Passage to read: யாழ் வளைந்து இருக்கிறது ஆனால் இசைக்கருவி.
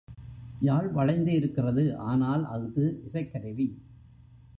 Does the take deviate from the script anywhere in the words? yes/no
yes